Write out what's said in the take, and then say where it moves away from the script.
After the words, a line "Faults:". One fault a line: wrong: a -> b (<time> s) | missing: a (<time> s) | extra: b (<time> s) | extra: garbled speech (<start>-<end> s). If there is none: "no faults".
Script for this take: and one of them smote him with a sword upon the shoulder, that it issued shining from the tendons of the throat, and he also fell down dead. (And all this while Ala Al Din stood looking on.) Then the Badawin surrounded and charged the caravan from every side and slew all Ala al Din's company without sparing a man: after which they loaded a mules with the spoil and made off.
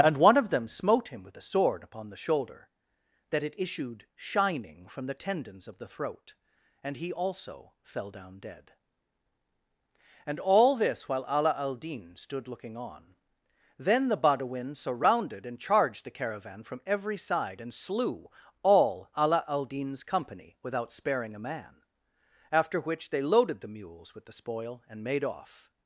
and one of them smote him with a sword upon the shoulder, that it issued shining from the tendons of the throat, and he also fell down dead. (And all this while Ala Al Din stood looking on.) Then the Badawin surrounded and charged the caravan from every side and slew all Ala al Din's company without sparing a man: after which they loaded the mules with the spoil and made off.
Faults:
wrong: a -> the (23.6 s)